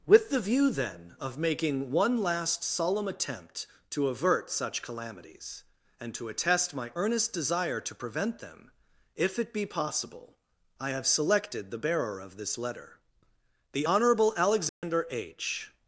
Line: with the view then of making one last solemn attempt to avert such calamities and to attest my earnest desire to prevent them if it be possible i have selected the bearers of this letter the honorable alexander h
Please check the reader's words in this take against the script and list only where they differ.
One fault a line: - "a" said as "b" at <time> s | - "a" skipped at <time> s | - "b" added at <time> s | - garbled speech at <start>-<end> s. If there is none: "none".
- "bearers" said as "bearer" at 11.8 s